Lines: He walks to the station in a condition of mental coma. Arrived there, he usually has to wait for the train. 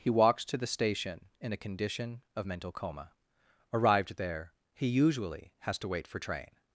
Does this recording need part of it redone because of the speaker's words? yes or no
yes